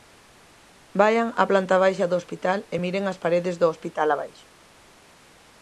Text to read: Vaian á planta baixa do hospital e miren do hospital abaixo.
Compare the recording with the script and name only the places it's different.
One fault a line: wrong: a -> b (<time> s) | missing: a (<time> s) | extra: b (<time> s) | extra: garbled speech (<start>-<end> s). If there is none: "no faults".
extra: as paredes (3.1 s)